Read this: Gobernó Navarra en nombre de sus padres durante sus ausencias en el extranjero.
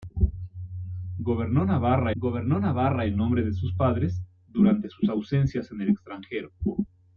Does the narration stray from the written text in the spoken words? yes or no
yes